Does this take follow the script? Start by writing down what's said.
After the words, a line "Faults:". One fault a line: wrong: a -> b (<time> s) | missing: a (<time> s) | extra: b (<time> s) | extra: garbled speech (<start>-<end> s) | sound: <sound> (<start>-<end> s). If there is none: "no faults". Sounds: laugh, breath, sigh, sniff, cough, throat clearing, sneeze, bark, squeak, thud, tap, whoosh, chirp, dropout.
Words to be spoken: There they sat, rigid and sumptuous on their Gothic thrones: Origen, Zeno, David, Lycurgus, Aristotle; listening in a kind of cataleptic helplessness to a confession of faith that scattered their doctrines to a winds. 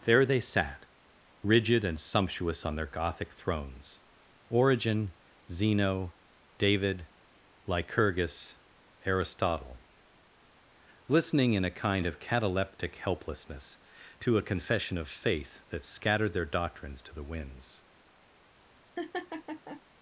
There they sat, rigid and sumptuous on their Gothic thrones: Origen, Zeno, David, Lycurgus, Aristotle; listening in a kind of cataleptic helplessness to a confession of faith that scattered their doctrines to the winds.
Faults:
wrong: a -> the (17.1 s)
sound: laugh (19.0-19.8 s)